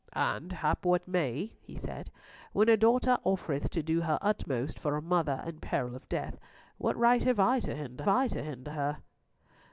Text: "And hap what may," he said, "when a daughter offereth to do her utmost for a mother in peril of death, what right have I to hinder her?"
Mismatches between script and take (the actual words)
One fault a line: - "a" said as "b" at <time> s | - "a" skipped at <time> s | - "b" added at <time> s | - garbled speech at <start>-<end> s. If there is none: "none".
- "I to hinder" added at 8.1 s